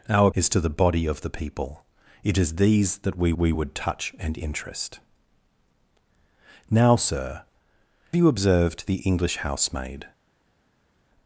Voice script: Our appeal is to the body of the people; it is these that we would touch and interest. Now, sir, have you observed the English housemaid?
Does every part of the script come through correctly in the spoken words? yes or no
no